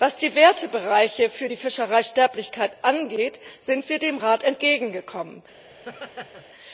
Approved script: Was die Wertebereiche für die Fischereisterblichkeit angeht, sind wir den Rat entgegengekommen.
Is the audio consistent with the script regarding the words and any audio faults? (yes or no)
no